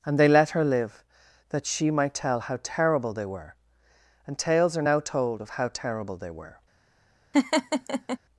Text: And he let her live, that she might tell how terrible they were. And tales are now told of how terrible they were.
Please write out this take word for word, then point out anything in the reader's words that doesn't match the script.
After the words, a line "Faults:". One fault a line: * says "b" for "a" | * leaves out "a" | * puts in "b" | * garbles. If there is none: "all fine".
And they let her live, that she might tell how terrible they were. And tales are now told of how terrible they were.
Faults:
* says "they" for "he"